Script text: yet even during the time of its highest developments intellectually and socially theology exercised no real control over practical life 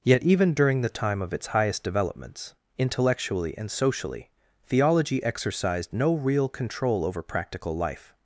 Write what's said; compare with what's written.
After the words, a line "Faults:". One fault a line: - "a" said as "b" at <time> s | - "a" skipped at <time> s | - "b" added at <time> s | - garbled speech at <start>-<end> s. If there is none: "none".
yet even during the time of its highest developments intellectually and socially theology exercised no real control over practical life
Faults:
none